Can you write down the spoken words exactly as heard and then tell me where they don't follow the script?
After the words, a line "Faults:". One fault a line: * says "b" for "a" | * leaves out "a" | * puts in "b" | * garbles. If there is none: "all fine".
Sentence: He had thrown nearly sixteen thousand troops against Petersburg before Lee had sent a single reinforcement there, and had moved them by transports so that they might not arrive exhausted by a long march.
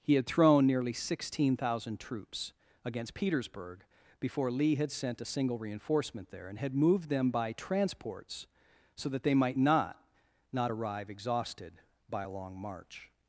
He had thrown nearly sixteen thousand troops against Petersburg before Lee had sent a single reinforcement there, and had moved them by transports so that they might not not arrive exhausted by a long march.
Faults:
* puts in "not"